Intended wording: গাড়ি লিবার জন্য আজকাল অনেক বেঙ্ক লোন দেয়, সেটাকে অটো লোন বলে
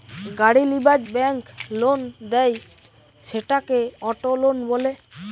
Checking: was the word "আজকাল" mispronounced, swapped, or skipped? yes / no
yes